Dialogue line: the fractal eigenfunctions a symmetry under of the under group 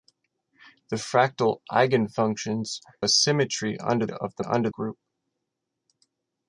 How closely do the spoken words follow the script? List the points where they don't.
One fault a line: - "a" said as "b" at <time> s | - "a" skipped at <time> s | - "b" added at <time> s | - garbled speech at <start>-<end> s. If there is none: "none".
none